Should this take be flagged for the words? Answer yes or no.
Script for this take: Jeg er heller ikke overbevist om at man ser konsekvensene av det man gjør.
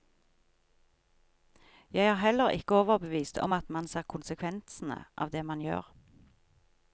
no